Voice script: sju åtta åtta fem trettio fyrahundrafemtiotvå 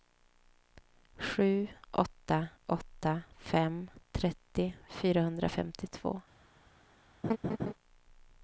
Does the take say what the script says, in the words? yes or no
yes